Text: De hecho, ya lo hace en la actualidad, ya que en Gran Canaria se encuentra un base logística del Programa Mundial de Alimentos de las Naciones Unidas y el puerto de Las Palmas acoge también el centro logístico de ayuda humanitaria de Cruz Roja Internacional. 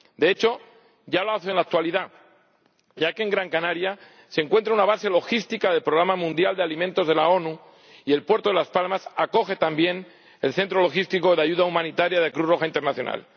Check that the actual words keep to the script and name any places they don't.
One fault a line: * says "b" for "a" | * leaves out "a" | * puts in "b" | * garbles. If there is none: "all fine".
* says "una" for "un"